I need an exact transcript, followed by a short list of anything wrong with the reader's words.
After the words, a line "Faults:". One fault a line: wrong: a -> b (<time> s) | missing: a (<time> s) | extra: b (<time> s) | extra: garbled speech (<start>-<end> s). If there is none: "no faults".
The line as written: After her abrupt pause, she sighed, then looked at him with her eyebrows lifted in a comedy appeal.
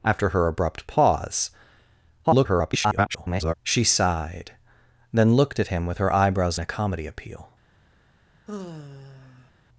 After her abrupt pause, [garbled] she sighed, then looked at him with her eyebrows a comedy appeal.
Faults:
extra: garbled speech (2.2-3.5 s)
missing: lifted in (6.6 s)